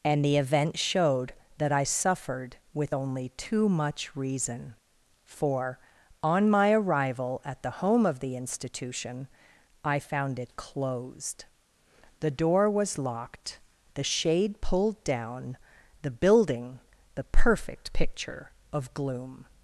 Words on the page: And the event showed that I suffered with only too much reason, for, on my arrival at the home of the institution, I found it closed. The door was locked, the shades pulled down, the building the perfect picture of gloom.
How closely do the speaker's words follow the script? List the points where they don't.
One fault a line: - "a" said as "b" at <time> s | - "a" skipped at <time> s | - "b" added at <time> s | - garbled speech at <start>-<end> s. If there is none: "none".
- "shades" said as "shade" at 14.0 s